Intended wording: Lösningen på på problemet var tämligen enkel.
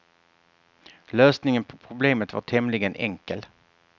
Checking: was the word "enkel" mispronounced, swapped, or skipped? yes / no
no